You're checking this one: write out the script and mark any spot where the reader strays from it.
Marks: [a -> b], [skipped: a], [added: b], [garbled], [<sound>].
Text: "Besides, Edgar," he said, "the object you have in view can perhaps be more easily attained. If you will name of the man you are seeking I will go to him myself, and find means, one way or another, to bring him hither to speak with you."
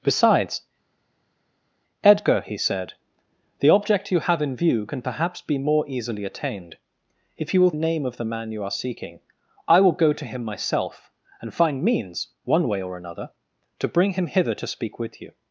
"Besides, Edgar," he said, "the object you have in view can perhaps be more easily attained. If you will name of the man you are seeking I will go to him myself, and find means, one way or another, to bring him hither to speak with you."